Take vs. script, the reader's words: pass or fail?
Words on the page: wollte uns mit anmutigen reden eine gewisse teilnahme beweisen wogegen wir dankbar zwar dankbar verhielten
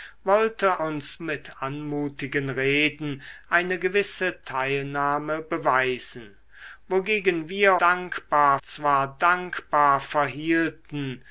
pass